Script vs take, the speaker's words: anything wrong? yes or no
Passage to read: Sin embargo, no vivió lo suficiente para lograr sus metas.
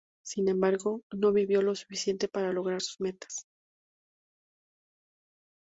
no